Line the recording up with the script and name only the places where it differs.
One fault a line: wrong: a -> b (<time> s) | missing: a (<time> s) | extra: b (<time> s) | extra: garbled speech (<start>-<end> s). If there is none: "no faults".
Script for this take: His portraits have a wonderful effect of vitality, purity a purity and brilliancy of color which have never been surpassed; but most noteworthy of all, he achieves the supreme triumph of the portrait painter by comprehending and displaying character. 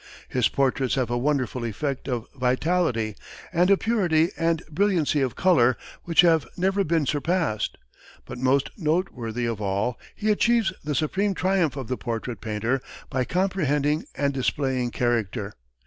wrong: purity -> and (3.5 s)